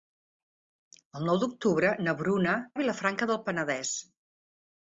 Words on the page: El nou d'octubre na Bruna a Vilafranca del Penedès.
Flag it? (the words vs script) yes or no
no